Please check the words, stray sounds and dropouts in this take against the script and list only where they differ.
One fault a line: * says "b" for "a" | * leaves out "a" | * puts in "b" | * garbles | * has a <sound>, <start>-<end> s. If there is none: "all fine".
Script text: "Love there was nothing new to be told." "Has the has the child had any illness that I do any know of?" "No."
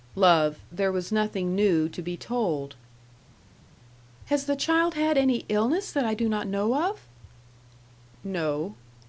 * leaves out "has the"
* says "not" for "any"